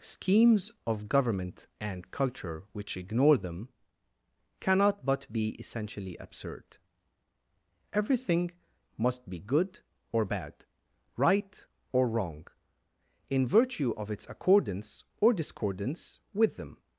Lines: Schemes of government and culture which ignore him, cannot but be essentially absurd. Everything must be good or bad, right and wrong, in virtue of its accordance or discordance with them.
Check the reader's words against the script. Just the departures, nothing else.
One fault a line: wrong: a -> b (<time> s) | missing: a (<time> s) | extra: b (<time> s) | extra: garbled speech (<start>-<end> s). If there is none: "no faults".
wrong: him -> them (3.4 s)
wrong: and -> or (11.9 s)